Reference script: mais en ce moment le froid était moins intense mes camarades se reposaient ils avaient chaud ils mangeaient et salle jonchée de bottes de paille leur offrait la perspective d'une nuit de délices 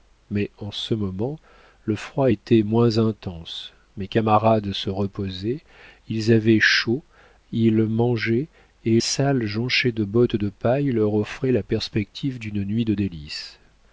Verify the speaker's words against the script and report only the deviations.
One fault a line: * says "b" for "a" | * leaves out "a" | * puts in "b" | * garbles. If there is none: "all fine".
all fine